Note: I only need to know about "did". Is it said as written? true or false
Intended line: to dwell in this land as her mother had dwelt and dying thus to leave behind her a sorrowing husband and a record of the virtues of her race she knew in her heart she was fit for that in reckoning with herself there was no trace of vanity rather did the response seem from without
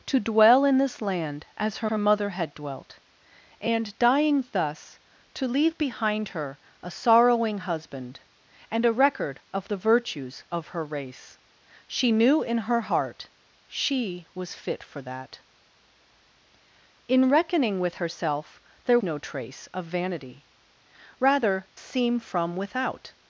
false